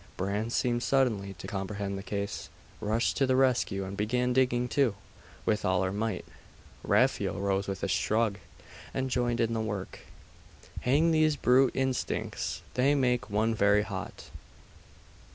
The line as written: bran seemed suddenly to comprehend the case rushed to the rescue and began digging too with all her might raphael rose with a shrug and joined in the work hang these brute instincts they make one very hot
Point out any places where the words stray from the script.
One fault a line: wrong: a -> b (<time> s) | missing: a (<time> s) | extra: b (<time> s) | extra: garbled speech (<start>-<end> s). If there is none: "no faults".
no faults